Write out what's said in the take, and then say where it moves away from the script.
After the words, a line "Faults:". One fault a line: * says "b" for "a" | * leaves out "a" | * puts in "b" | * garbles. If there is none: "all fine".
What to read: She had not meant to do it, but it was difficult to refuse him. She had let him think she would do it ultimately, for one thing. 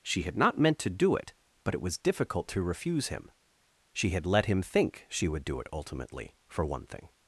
She had not meant to do it, but it was difficult to refuse him. She had let him think she would do it ultimately, for one thing.
Faults:
all fine